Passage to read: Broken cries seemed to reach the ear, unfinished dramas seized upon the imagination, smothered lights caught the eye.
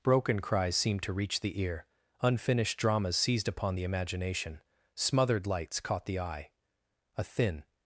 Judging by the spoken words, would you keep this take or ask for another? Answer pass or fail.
fail